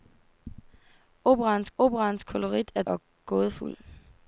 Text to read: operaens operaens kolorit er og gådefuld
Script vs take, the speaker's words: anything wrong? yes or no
no